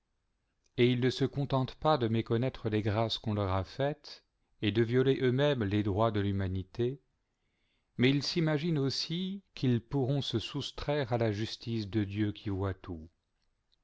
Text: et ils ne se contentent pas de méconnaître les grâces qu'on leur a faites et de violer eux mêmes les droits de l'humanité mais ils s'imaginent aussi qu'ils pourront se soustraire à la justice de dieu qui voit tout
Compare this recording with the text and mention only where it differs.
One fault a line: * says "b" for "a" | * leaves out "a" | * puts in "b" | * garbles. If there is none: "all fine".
all fine